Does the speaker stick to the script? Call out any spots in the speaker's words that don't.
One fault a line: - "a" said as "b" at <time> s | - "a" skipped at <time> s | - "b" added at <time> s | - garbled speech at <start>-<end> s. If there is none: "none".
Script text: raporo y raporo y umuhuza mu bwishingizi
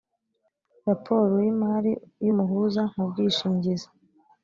- "raporo" said as "imari" at 1.5 s